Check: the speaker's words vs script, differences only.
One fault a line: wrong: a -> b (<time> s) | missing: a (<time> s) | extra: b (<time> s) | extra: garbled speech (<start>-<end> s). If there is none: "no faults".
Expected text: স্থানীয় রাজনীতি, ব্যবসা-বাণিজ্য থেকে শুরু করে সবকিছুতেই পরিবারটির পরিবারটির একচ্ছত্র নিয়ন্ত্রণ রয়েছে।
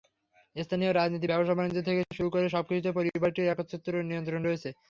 missing: পরিবারটির (3.5 s)